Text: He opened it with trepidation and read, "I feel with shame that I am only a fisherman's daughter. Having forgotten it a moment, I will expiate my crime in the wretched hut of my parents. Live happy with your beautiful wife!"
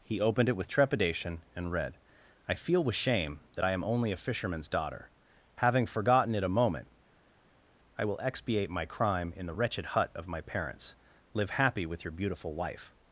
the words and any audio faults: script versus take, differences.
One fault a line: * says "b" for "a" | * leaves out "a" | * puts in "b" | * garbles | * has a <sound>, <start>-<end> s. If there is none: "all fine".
all fine